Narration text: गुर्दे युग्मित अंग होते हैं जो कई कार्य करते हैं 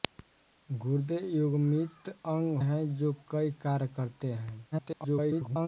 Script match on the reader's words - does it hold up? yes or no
no